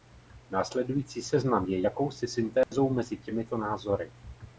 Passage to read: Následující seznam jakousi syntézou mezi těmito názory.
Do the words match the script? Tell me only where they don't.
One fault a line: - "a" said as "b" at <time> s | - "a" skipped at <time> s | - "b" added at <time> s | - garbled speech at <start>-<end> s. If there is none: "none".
- "je" added at 1.7 s